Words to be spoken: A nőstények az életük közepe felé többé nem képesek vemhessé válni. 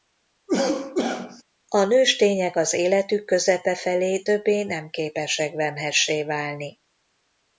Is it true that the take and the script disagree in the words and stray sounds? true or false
true